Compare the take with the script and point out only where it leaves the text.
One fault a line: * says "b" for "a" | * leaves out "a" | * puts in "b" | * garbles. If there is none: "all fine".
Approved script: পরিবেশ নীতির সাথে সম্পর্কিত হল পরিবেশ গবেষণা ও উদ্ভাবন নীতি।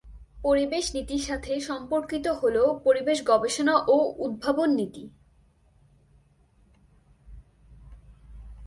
all fine